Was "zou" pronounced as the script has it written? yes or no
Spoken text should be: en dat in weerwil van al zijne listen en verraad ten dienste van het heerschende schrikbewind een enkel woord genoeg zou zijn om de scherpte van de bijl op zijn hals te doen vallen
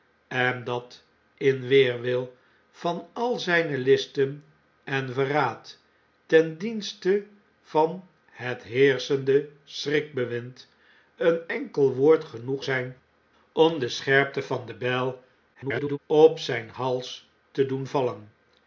no